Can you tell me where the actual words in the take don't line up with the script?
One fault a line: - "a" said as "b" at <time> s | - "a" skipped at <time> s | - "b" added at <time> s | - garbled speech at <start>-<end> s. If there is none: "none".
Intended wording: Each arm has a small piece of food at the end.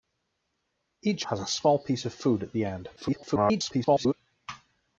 - "arm" skipped at 1.3 s
- garbled speech at 3.0-4.1 s